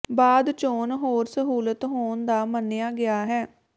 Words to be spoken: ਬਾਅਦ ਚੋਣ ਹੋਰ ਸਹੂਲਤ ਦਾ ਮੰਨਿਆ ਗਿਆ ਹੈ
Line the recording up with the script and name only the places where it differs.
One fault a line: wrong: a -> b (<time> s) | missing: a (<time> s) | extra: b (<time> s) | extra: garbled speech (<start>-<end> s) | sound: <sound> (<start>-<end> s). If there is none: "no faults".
extra: ਹੋਣ (1.9 s)